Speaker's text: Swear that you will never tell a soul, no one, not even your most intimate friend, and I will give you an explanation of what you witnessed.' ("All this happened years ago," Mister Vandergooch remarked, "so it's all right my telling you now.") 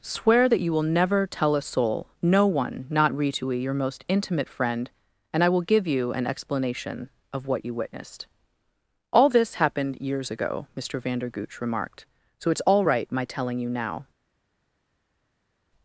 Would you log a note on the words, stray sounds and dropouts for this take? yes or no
yes